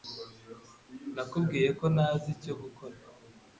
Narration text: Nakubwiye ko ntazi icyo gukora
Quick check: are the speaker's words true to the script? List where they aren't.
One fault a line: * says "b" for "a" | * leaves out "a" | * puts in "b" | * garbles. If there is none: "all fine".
all fine